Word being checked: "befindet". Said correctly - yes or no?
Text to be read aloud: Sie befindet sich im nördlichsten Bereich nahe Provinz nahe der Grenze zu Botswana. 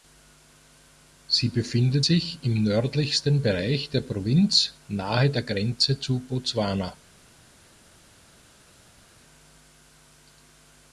yes